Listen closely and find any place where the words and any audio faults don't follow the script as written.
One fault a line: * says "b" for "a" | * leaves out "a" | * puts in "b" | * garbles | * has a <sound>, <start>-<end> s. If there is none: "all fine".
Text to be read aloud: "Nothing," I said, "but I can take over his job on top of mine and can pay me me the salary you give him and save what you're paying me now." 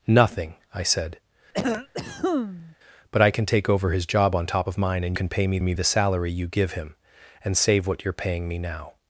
* has a cough, 1.5-2.8 s